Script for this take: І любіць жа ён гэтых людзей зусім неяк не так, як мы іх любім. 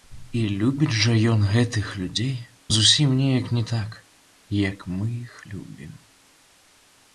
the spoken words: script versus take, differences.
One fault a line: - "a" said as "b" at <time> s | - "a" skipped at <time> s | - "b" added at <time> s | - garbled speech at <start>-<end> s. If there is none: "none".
none